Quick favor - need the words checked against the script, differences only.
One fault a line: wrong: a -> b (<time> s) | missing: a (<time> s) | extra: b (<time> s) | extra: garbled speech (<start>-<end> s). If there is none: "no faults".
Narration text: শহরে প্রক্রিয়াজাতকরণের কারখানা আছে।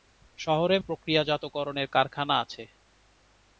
no faults